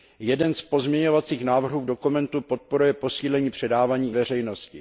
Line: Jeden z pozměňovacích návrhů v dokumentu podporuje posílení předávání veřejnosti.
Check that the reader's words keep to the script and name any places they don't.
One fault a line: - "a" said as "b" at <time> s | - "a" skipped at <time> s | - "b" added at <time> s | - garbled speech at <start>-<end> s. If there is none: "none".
none